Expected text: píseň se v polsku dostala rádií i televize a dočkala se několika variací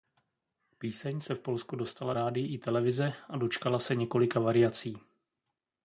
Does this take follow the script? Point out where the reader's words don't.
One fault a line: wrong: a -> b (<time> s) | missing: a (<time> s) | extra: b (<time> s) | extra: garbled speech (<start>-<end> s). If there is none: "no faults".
no faults